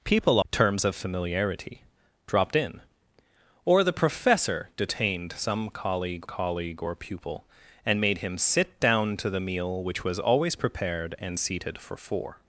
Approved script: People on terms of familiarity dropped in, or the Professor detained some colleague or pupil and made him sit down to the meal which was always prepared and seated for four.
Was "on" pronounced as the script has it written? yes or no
no